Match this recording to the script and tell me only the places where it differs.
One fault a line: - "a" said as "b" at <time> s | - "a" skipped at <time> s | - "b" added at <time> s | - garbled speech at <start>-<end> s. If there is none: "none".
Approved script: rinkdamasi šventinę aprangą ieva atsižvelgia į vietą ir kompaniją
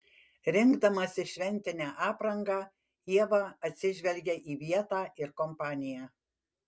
none